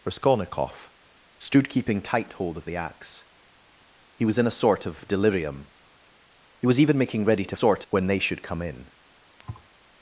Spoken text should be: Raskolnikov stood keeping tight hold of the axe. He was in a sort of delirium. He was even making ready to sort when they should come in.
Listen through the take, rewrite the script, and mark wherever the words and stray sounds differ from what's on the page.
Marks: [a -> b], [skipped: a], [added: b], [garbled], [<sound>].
Raskolnikov stood keeping tight hold of the axe. He was in a sort of delirium. He was even making ready to sort when they should come in. [thud]